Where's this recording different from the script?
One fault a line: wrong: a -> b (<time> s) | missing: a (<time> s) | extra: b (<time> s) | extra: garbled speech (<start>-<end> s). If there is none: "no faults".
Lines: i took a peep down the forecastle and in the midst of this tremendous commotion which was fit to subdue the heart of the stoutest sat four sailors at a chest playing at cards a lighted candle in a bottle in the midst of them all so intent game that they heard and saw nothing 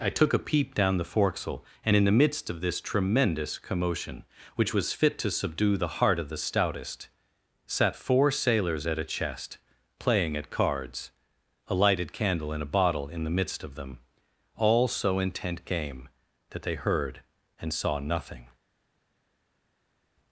no faults